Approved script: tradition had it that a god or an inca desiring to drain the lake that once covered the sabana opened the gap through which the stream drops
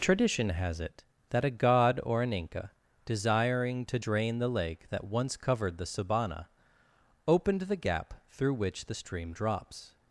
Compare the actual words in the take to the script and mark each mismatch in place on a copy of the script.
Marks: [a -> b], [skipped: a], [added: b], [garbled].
tradition [had -> has] it that a god or an inca desiring to drain the lake that once covered the sabana opened the gap through which the stream drops